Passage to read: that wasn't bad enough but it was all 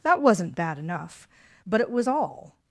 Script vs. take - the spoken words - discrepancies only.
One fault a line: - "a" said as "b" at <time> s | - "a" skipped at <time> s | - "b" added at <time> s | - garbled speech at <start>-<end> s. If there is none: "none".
none